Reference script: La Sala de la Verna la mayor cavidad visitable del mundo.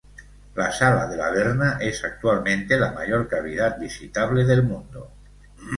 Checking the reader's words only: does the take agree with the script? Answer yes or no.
no